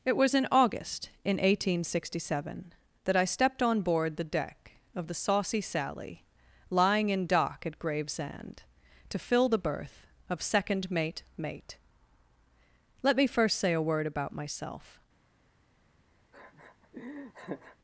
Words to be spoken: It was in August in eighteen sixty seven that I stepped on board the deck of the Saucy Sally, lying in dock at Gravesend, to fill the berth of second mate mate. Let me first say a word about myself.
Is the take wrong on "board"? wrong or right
right